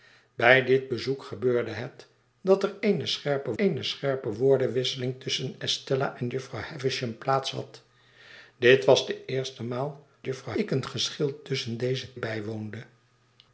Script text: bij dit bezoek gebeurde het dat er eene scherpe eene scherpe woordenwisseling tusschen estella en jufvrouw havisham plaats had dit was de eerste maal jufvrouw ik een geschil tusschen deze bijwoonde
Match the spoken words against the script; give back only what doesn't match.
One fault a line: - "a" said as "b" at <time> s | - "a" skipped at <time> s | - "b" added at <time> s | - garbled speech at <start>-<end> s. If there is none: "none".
none